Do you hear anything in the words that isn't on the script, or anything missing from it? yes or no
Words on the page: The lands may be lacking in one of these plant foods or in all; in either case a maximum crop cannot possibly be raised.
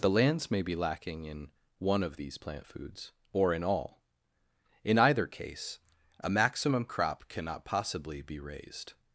no